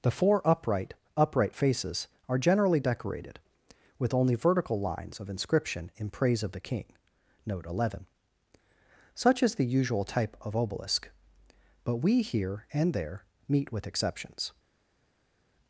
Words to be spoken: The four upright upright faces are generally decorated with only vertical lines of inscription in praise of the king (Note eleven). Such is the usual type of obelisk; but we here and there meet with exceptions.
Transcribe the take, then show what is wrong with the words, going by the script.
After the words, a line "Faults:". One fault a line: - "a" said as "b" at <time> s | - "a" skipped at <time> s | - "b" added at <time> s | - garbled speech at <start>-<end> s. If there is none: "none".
The four upright upright faces are generally decorated with only vertical lines of inscription in praise of the king (Note eleven). Such is the usual type of obelisk; but we here and there meet with exceptions.
Faults:
none